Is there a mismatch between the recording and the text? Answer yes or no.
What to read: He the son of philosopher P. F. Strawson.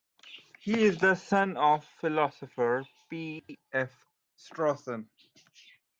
yes